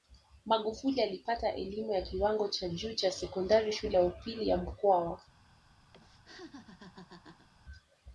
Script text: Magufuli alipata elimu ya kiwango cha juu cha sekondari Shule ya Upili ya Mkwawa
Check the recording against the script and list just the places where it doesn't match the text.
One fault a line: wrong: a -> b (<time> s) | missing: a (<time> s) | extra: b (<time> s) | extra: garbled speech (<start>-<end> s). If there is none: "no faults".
no faults